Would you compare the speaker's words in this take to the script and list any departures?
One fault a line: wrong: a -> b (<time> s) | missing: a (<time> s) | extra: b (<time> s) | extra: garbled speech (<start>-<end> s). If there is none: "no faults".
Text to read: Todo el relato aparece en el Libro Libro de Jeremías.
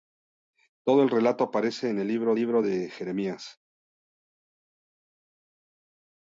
no faults